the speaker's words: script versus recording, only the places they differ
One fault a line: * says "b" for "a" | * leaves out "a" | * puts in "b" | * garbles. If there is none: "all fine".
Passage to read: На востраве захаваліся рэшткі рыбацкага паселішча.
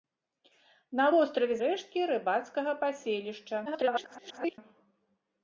* leaves out "захаваліся"
* garbles